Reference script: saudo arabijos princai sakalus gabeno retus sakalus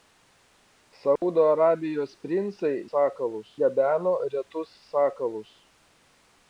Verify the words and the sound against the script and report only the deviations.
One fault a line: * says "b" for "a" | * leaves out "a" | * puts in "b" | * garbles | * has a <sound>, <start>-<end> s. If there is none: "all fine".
* has a dropout, 1.2-1.2 s